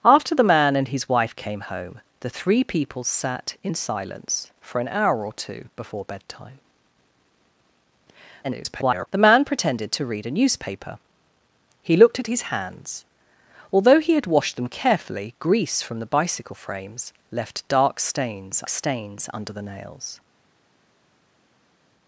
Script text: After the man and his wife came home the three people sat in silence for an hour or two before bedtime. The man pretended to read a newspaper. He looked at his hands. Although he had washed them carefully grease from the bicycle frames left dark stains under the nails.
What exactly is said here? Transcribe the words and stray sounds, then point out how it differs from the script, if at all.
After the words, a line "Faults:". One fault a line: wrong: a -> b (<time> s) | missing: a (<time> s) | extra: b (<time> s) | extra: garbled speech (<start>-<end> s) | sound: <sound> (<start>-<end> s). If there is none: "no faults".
After the man and his wife came home the three people sat in silence for an hour or two before bedtime. [garbled] The man pretended to read a newspaper. He looked at his hands. Although he had washed them carefully grease from the bicycle frames left dark stains stains under the nails.
Faults:
extra: garbled speech (8.4-9.1 s)
extra: stains (18.7 s)